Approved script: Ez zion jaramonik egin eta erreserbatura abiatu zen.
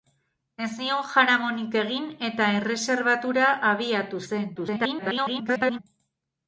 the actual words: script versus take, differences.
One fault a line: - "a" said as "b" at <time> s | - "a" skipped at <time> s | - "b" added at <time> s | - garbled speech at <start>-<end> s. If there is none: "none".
- garbled speech at 4.6-5.8 s